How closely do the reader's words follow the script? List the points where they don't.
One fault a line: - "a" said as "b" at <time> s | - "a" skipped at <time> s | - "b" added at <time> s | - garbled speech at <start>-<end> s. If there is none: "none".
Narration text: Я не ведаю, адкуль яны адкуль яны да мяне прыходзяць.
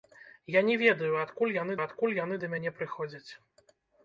none